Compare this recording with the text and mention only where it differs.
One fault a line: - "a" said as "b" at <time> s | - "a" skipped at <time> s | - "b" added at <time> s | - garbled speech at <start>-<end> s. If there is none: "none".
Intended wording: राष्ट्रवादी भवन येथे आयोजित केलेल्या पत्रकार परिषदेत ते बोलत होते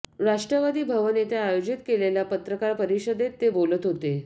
none